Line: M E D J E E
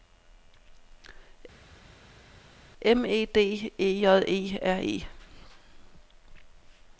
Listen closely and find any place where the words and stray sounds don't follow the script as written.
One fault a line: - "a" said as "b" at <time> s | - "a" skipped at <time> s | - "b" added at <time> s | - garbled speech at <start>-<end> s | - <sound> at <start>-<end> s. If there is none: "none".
- "E" added at 3.8 s
- "R" added at 4.6 s